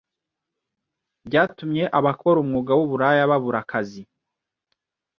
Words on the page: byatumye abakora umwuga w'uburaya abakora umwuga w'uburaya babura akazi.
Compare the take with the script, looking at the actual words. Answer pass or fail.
fail